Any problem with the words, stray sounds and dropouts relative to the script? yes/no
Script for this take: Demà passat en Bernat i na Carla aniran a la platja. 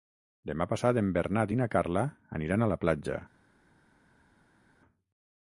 no